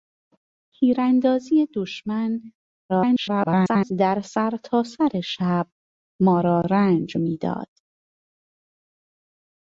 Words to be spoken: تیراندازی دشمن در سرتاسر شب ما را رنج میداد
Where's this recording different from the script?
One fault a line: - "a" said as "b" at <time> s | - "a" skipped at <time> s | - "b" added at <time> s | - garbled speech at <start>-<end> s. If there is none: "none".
- garbled speech at 2.9-3.9 s